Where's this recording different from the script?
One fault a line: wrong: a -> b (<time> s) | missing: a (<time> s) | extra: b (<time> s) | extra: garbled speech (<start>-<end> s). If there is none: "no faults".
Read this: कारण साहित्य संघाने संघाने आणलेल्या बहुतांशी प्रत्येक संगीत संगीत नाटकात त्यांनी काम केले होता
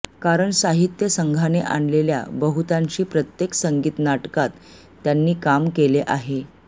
missing: संघाने (1.6 s)
missing: संगीत (4.0 s)
wrong: होता -> आहे (6.1 s)